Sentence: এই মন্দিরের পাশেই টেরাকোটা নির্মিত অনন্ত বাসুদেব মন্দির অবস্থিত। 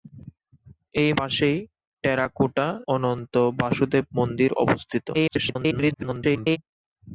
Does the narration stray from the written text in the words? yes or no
yes